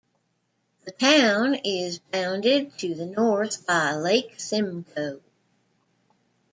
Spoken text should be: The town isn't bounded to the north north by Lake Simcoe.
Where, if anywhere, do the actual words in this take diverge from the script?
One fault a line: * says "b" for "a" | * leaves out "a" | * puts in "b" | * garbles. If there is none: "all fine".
* says "is" for "isn't"
* leaves out "north"